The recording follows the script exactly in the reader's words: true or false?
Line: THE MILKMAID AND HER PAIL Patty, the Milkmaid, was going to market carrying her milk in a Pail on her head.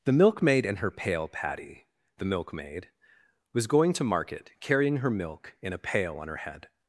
true